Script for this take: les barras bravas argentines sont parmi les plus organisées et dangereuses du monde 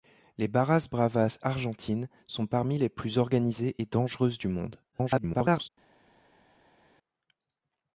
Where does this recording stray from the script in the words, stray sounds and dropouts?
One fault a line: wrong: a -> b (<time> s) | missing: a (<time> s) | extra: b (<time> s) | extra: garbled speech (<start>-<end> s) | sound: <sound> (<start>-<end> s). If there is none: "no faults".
extra: garbled speech (4.9-5.7 s)